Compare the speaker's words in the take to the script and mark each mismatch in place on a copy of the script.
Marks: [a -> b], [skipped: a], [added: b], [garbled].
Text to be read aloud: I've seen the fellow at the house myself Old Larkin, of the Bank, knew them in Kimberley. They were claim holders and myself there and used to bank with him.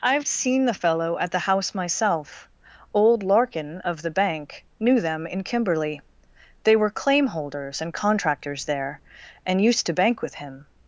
I've seen the fellow at the house myself Old Larkin, of the Bank, knew them in Kimberley. They were claim holders and [myself -> contractors] there and used to bank with him.